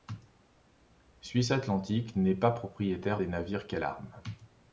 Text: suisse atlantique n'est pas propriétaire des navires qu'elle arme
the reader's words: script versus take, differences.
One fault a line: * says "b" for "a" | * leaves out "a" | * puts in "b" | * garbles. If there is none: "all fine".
all fine